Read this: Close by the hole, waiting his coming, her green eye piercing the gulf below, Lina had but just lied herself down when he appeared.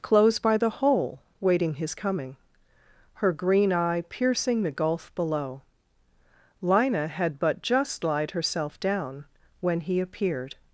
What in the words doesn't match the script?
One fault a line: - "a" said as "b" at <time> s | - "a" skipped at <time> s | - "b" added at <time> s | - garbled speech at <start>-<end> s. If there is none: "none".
none